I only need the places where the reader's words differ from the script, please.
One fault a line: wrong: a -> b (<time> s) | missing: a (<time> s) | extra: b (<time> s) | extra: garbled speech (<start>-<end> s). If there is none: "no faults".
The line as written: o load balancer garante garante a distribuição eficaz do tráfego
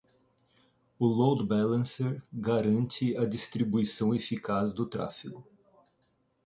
missing: garante (3.2 s)